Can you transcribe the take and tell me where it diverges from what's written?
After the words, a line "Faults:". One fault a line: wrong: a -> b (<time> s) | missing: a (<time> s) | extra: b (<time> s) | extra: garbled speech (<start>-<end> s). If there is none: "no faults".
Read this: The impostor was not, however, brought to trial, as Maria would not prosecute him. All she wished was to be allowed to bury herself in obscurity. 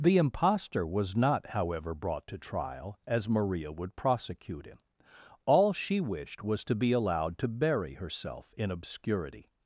The impostor was not, however, brought to trial, as Maria would prosecute him. All she wished was to be allowed to bury herself in obscurity.
Faults:
missing: not (4.0 s)